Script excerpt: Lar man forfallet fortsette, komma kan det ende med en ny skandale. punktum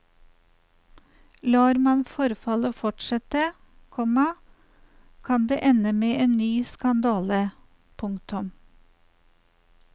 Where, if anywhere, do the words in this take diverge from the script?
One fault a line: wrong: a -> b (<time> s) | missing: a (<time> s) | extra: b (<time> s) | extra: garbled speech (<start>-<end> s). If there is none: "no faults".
no faults